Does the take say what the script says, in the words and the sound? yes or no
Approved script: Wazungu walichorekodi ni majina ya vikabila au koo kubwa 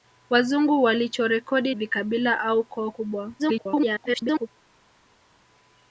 no